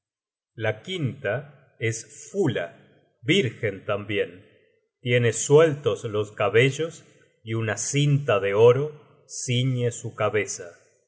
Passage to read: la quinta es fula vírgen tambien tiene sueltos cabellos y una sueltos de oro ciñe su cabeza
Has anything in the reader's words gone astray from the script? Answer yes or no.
yes